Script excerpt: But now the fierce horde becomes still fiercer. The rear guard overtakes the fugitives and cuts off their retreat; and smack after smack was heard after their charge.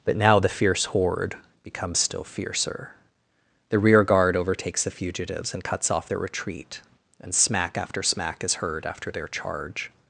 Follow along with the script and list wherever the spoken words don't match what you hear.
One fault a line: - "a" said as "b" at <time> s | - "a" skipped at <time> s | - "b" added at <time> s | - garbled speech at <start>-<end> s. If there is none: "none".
- "was" said as "is" at 8.4 s